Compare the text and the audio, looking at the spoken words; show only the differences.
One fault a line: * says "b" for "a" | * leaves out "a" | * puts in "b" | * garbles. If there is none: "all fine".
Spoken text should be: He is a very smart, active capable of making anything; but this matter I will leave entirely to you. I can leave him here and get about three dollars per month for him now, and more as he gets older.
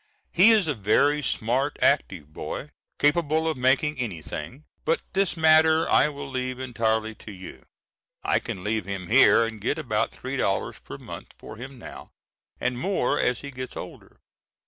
* puts in "boy"